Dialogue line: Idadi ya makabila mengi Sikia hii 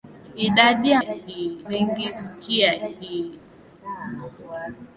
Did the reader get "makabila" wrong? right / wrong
wrong